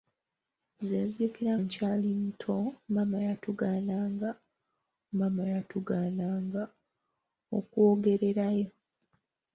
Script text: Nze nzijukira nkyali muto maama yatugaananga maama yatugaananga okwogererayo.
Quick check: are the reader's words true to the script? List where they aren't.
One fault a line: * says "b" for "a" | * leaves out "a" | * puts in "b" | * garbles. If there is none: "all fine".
all fine